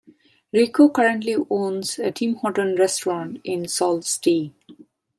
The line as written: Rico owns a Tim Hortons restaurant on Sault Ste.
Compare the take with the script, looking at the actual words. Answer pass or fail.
fail